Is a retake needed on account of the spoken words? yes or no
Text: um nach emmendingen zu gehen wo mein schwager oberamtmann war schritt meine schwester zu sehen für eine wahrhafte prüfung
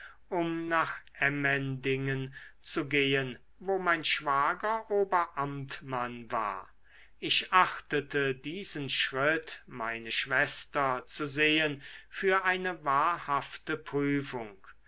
yes